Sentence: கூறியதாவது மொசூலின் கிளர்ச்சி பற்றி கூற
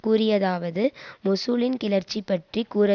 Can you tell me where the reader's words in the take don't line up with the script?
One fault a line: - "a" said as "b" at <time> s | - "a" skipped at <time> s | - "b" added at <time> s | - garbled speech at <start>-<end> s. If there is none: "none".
none